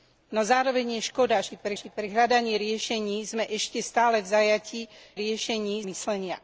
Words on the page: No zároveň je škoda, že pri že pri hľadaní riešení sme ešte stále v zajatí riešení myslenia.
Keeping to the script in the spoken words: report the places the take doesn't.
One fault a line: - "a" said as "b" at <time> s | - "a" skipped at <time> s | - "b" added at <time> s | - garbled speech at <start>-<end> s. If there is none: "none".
none